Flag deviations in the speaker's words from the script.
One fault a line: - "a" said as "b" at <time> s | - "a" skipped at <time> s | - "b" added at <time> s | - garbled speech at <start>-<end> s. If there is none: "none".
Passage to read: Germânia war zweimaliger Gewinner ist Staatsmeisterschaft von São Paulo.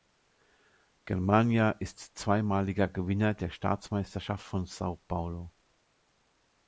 - "war" said as "ist" at 1.8 s
- "ist" said as "der" at 3.4 s